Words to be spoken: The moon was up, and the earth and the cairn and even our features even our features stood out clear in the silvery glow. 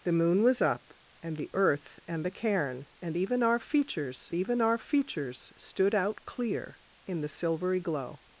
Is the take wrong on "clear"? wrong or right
right